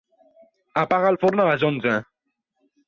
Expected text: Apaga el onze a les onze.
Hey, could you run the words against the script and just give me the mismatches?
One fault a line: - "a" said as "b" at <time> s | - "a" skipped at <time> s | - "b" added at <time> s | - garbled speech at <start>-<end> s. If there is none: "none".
- "onze" said as "forn" at 1.2 s